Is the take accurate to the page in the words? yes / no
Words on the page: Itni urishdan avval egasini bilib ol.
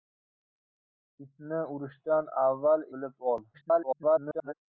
no